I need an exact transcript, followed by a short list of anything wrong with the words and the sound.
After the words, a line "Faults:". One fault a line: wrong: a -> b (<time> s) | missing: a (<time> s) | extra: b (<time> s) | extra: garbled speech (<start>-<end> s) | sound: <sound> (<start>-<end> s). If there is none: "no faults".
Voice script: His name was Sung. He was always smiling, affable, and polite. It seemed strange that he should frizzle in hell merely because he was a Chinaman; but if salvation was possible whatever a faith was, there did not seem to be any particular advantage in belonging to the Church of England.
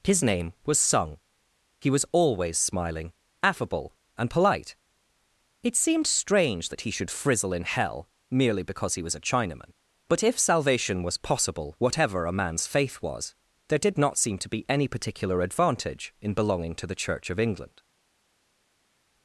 His name was Sung. He was always smiling, affable, and polite. It seemed strange that he should frizzle in hell merely because he was a Chinaman; but if salvation was possible whatever a man's faith was, there did not seem to be any particular advantage in belonging to the Church of England.
Faults:
extra: man's (12.3 s)